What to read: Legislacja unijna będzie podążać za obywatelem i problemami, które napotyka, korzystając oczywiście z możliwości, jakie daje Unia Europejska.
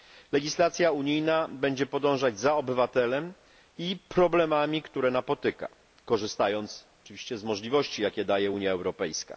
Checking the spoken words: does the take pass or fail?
pass